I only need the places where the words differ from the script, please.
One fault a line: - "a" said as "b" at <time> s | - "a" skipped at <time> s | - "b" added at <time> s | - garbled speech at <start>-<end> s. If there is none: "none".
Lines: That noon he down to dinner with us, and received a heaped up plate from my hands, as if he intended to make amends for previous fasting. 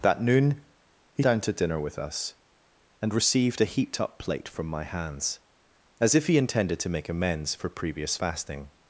none